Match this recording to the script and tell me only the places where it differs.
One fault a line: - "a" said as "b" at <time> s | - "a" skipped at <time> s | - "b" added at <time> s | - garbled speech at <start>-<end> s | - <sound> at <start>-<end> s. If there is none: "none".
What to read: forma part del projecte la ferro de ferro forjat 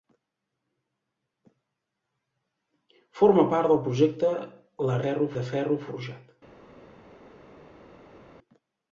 none